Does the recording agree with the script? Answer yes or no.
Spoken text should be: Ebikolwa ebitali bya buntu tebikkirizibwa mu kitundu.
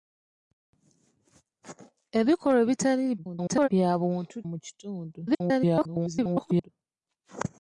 no